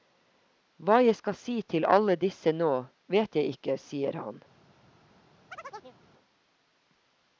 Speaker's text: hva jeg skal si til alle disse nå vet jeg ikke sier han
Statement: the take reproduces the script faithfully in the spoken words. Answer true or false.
true